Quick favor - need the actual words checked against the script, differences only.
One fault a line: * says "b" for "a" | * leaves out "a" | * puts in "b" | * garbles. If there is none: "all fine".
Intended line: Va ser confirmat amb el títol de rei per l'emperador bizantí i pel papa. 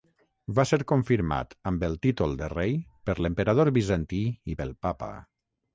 all fine